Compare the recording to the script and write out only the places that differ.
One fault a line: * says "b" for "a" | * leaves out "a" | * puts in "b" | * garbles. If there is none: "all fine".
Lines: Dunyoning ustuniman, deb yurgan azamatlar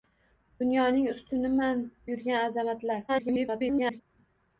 * leaves out "deb"
* garbles